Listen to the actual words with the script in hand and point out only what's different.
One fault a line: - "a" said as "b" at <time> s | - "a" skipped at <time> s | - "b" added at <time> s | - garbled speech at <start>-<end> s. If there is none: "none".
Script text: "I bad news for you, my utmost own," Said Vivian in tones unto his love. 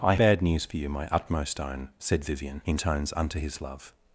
none